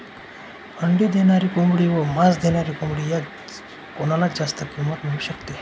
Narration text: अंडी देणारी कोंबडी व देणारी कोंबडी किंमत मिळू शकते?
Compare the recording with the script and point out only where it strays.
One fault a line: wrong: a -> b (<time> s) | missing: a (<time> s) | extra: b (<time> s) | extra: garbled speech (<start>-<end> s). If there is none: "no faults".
extra: मांस (2.0 s)
extra: यात कोणाला जास्त (3.1 s)